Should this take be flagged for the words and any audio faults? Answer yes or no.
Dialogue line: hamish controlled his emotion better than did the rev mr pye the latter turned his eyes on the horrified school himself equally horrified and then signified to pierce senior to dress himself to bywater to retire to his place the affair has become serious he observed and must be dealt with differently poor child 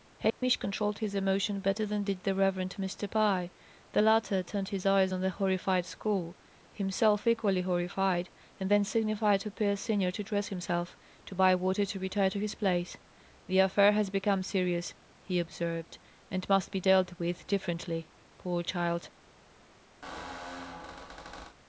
yes